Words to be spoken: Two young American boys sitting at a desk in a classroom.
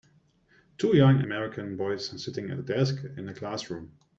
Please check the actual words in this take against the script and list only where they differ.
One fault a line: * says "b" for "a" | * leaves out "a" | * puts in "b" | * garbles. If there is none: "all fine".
all fine